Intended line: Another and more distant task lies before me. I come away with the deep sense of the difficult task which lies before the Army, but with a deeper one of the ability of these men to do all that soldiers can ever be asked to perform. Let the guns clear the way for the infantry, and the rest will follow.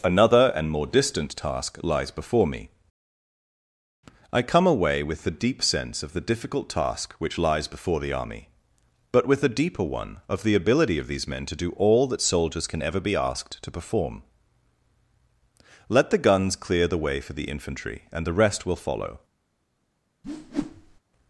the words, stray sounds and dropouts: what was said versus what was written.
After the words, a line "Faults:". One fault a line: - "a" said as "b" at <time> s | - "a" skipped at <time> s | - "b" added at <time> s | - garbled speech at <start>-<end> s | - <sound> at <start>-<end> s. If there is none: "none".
Another and more distant task lies before me. I come away with the deep sense of the difficult task which lies before the Army, but with a deeper one of the ability of these men to do all that soldiers can ever be asked to perform. Let the guns clear the way for the infantry, and the rest will follow.
Faults:
- whoosh at 20.2-21.0 s